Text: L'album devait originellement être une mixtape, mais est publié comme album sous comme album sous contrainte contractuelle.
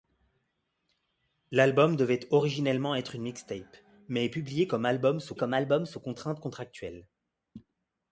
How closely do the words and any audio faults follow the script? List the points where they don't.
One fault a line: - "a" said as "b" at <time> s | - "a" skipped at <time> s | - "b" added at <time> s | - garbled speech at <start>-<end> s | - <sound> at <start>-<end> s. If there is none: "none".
none